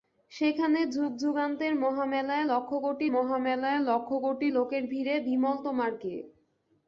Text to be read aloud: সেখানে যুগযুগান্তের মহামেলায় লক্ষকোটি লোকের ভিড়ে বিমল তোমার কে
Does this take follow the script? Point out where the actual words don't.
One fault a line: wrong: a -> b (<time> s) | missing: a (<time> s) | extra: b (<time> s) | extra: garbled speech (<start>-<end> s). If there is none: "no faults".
extra: মহামেলায় লক্ষকোটি (3.1 s)